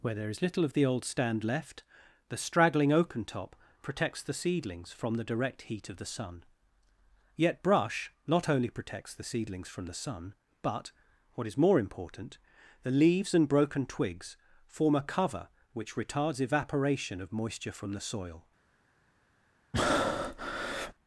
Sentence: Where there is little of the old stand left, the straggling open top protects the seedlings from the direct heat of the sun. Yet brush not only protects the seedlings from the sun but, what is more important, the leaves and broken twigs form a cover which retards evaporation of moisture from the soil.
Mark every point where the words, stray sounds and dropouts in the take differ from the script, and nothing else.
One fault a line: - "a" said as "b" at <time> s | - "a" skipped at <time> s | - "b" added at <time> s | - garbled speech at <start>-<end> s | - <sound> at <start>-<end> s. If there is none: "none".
- "open" said as "oaken" at 2.9 s
- breath at 19.7-20.9 s